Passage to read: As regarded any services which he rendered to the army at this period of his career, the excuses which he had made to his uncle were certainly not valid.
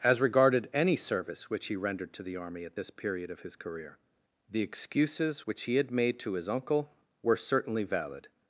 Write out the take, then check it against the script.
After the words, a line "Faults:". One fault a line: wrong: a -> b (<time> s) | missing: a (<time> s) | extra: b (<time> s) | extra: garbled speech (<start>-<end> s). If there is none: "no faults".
As regarded any service which he rendered to the army at this period of his career, the excuses which he had made to his uncle were certainly valid.
Faults:
wrong: services -> service (0.9 s)
missing: not (7.8 s)